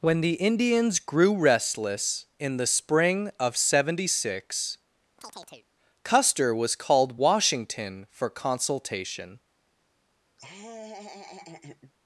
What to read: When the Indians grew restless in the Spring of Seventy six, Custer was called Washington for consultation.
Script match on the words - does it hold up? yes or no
yes